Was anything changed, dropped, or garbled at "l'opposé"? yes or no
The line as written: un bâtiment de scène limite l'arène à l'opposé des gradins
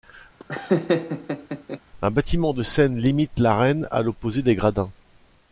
no